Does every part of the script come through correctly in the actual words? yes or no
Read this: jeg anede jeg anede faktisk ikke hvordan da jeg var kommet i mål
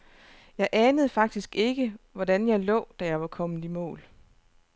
no